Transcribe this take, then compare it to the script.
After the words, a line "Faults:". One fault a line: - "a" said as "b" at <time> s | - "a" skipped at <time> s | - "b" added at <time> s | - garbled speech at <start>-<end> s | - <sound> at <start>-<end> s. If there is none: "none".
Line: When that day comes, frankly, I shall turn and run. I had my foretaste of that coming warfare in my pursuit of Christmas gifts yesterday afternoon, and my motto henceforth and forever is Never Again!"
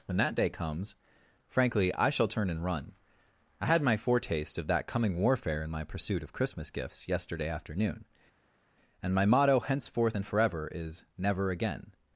When that day comes, frankly, I shall turn and run. I had my foretaste of that coming warfare in my pursuit of Christmas gifts yesterday afternoon, and my motto henceforth and forever is Never Again!"
Faults:
none